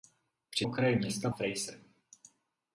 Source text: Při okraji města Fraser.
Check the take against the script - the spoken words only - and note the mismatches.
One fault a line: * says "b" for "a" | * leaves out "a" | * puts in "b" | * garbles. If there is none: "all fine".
all fine